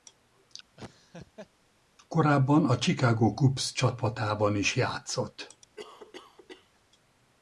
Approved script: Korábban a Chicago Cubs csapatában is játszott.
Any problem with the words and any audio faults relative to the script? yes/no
yes